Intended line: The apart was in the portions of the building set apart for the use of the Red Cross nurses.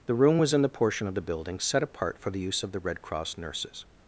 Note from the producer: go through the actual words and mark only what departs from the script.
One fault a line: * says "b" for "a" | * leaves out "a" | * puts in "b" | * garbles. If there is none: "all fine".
* says "room" for "apart"
* says "portion" for "portions"